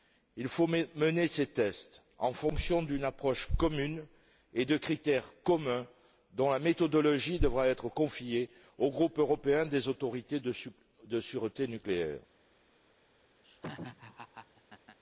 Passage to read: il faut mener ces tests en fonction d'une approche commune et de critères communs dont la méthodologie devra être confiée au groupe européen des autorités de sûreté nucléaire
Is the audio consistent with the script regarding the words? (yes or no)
yes